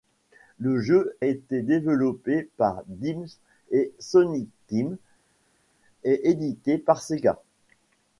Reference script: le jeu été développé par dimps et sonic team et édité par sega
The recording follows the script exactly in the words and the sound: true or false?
true